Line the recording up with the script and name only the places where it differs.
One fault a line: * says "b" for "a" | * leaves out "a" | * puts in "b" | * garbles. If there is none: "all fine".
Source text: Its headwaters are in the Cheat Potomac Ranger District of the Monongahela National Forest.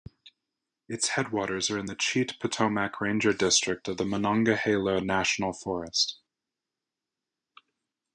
all fine